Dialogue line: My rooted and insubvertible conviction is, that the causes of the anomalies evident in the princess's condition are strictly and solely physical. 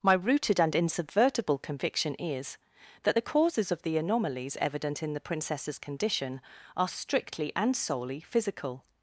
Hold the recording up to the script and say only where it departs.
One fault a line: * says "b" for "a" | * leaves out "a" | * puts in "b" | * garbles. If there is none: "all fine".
all fine